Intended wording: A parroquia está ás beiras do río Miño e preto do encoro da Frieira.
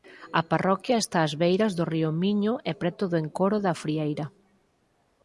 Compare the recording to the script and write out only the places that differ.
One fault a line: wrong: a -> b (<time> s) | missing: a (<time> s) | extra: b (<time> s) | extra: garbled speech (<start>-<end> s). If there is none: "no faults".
no faults